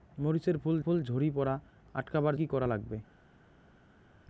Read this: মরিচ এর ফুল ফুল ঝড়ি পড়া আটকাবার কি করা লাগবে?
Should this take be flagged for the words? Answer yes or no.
no